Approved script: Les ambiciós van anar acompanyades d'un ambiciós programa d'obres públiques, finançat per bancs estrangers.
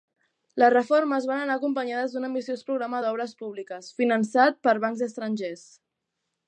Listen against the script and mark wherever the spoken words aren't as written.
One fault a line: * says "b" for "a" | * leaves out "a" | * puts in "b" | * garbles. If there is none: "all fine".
* says "reformes" for "ambiciós"